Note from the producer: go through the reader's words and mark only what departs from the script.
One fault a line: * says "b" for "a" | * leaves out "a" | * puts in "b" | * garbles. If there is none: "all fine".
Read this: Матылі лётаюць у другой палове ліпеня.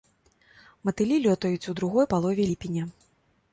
all fine